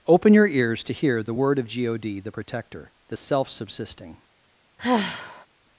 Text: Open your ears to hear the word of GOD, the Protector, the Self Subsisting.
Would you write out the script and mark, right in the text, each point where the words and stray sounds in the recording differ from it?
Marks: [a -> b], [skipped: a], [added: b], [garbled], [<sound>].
Open your ears to hear the word of GOD, the Protector, the Self Subsisting. [sigh]